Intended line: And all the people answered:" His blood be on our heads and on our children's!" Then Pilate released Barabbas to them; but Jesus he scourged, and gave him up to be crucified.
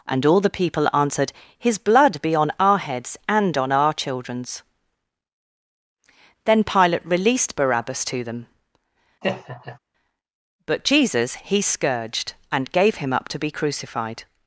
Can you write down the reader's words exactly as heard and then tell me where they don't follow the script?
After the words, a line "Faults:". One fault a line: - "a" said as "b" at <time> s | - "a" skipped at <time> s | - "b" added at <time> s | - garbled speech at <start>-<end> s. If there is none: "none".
And all the people answered:" His blood be on our heads and on our children's!" Then Pilate released Barabbas to them; but Jesus he scourged, and gave him up to be crucified.
Faults:
none